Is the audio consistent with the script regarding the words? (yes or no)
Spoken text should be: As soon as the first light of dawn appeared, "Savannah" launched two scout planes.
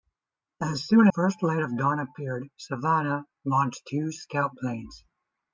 no